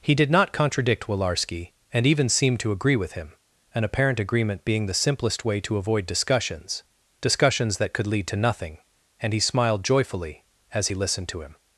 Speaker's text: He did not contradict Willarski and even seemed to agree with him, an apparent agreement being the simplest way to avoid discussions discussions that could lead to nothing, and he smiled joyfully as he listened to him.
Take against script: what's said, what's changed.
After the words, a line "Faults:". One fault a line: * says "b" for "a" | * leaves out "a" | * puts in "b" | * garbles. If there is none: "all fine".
He did not contradict Willarski and even seemed to agree with him, an apparent agreement being the simplest way to avoid discussions discussions that could lead to nothing, and he smiled joyfully as he listened to him.
Faults:
all fine